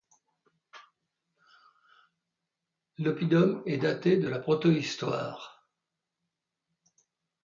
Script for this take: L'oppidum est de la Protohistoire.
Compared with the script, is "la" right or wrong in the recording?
right